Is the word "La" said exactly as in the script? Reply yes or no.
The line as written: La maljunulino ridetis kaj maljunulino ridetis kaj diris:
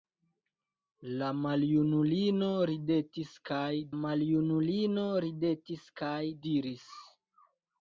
yes